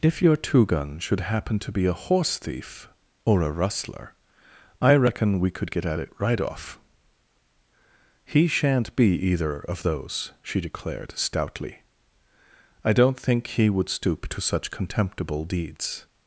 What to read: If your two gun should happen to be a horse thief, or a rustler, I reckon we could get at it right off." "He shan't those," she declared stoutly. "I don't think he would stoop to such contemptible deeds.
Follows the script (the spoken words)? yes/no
no